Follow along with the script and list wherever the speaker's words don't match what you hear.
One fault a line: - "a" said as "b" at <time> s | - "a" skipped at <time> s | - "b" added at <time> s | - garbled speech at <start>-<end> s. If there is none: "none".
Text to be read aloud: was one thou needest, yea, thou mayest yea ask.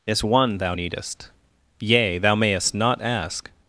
- "was" said as "is" at 0.1 s
- "yea" said as "not" at 2.7 s